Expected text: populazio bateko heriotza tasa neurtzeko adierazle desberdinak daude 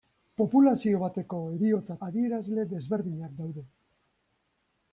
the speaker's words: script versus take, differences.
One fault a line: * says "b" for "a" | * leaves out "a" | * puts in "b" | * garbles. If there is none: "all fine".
* leaves out "tasa neurtzeko"